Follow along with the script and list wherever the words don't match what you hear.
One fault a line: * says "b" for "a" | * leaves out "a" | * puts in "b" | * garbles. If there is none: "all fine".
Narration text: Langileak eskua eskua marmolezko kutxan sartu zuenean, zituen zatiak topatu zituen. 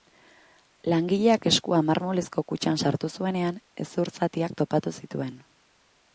* leaves out "eskua"
* says "hezur" for "zituen"